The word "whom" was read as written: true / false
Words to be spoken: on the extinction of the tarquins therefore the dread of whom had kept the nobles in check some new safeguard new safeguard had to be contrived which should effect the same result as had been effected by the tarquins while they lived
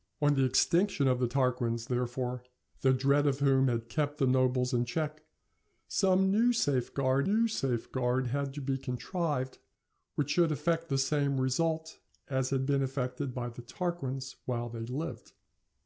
true